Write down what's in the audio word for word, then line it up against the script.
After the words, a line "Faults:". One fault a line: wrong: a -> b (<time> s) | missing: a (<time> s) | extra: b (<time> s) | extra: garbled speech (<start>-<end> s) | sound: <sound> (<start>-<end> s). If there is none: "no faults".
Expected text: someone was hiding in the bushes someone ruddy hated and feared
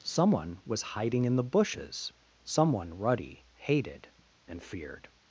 someone was hiding in the bushes someone ruddy hated and feared
Faults:
no faults